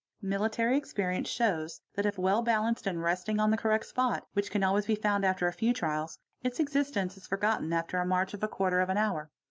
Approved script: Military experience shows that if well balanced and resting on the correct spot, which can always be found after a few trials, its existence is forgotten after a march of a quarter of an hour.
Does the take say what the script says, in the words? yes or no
yes